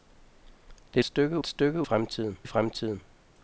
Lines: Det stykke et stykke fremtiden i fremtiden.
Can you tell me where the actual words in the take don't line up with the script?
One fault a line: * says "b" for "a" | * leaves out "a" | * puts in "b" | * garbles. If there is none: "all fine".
all fine